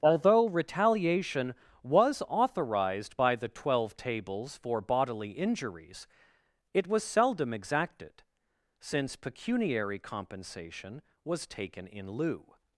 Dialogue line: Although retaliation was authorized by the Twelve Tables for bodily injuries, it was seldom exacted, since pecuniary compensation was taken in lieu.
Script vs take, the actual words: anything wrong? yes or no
no